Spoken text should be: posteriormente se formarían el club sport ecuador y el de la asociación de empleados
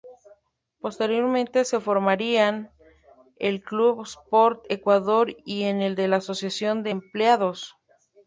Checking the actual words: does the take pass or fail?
pass